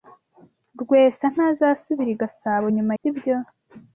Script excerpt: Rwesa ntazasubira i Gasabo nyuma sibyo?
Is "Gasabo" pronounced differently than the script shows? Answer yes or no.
no